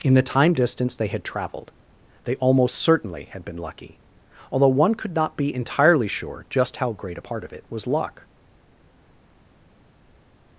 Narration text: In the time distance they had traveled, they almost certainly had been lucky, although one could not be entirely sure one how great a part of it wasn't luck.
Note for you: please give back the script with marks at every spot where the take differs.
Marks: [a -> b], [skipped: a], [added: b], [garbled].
In the time distance they had traveled, they almost certainly had been lucky, although one could not be entirely sure [one -> just] how great a part of it [wasn't -> was] luck.